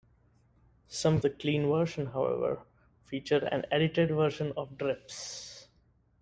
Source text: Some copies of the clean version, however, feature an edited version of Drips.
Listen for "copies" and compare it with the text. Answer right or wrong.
wrong